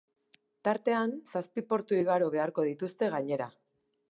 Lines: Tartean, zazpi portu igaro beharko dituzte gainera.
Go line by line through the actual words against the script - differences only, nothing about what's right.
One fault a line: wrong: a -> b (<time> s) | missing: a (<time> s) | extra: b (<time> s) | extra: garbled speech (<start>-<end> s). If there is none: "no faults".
no faults